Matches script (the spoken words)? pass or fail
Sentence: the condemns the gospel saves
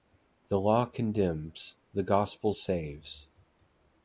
fail